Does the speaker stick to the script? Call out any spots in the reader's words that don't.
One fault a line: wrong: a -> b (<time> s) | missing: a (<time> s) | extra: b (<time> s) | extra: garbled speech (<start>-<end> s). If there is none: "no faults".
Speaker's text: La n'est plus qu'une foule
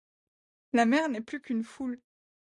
extra: mer (0.8 s)